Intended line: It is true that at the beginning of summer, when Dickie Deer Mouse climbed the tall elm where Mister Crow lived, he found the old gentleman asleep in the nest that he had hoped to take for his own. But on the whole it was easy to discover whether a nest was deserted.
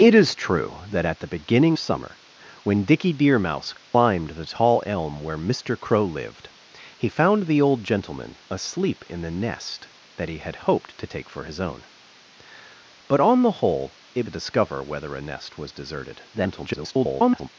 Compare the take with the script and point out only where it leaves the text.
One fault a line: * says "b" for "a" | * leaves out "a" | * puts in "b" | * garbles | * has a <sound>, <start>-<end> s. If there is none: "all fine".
* leaves out "of"
* has a dropout, 3.8-3.9 s
* leaves out "was easy to"
* garbles